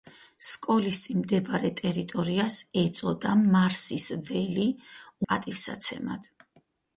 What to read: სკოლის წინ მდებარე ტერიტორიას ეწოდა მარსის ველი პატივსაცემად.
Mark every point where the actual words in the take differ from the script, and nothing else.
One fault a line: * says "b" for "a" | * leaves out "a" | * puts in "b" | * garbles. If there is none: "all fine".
all fine